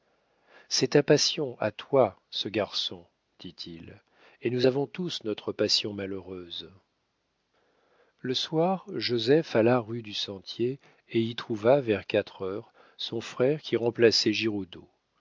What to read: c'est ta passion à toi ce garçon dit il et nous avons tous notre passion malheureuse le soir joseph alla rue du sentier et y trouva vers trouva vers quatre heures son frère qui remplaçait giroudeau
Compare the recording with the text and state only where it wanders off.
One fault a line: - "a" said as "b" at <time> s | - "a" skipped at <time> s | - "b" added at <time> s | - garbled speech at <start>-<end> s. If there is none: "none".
- "trouva vers" skipped at 12.1 s